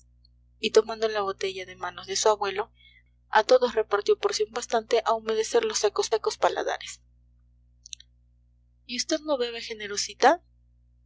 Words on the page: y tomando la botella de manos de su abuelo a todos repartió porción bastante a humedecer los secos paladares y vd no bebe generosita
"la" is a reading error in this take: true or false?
false